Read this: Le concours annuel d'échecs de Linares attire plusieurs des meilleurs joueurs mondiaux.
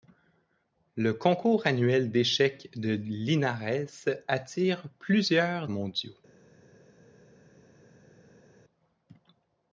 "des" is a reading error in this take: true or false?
true